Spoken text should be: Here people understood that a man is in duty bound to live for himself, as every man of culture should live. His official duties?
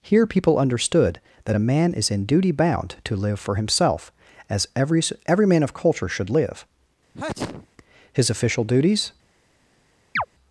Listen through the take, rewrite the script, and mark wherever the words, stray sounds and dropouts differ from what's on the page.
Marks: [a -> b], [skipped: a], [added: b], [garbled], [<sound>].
Here people understood that a man is in duty bound to live for himself, as every [added: every] man of culture should live. [sneeze] His official duties? [chirp]